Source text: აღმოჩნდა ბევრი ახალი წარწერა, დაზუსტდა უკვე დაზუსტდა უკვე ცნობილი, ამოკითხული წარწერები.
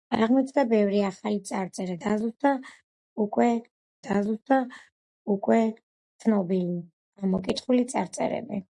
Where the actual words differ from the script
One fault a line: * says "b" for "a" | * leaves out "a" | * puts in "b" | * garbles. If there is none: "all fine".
all fine